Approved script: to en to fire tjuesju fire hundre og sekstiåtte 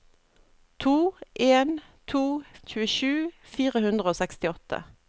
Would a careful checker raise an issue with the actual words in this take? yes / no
yes